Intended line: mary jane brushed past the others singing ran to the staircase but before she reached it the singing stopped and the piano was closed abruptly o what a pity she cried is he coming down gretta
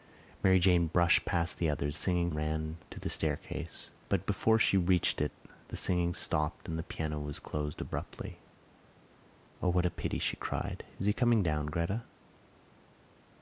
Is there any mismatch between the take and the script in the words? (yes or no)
no